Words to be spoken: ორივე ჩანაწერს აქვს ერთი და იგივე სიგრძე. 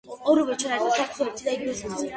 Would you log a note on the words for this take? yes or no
no